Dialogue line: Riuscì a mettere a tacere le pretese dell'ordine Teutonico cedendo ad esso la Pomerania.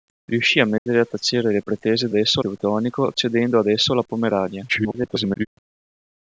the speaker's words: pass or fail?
fail